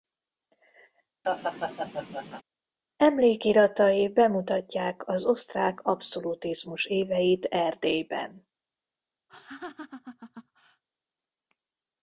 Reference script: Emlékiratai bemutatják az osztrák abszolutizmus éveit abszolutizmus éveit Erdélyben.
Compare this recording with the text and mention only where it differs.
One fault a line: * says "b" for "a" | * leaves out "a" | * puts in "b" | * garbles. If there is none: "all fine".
* leaves out "abszolutizmus éveit"